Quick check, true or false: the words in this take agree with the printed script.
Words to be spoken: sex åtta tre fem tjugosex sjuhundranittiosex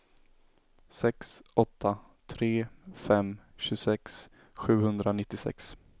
true